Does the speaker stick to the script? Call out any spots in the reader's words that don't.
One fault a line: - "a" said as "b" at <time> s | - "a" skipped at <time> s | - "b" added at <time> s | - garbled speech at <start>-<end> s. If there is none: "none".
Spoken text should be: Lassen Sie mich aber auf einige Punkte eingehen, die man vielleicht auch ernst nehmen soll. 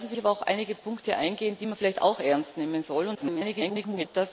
- "mich" skipped at 0.2 s
- garbled speech at 3.1-4.1 s